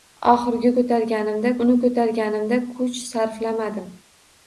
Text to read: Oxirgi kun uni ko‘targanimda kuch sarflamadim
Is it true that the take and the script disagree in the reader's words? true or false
true